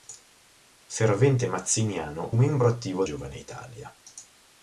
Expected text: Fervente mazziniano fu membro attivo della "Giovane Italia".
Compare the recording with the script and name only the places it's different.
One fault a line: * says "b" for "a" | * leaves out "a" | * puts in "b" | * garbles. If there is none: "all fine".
* leaves out "fu"
* leaves out "della"